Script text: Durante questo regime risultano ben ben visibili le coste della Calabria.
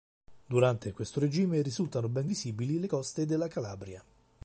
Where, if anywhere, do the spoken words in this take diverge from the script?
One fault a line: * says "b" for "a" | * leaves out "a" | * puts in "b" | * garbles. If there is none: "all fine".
* leaves out "ben"